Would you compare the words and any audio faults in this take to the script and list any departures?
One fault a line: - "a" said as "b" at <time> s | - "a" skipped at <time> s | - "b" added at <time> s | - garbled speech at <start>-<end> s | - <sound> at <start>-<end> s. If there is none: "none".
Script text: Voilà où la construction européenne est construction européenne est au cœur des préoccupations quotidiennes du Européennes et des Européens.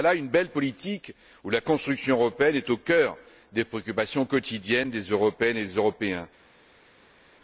- "où la construction européenne est" said as "une belle politique où la" at 0.1 s
- "du" said as "des" at 4.9 s